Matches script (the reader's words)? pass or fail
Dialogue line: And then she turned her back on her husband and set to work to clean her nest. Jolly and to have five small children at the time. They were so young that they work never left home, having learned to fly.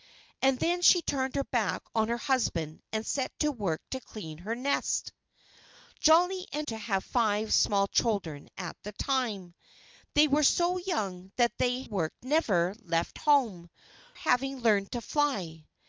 pass